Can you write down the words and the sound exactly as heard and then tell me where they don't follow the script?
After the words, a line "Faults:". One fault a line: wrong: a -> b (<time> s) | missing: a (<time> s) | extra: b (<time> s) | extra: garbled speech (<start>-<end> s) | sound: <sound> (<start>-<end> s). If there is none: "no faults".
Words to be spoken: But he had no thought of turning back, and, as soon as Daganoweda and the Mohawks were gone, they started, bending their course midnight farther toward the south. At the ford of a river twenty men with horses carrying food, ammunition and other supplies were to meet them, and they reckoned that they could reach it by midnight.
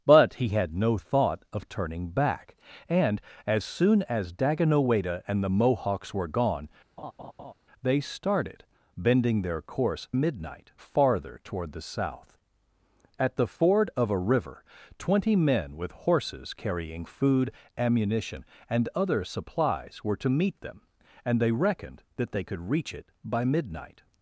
But he had no thought of turning back, and, as soon as Daganoweda and the Mohawks were gone, they started, bending their course midnight farther toward the south. At the ford of a river twenty men with horses carrying food, ammunition and other supplies were to meet them, and they reckoned that they could reach it by midnight.
Faults:
sound: laugh (7.0-7.5 s)